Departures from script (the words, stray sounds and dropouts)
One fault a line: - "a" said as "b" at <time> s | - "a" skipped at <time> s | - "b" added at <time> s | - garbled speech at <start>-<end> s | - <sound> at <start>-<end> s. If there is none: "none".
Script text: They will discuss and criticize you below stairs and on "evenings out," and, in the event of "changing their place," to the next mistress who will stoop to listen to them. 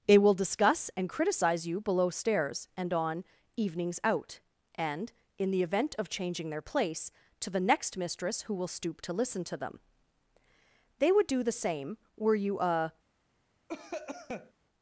- "They would do the same were you a" added at 11.0 s
- cough at 13.7-14.5 s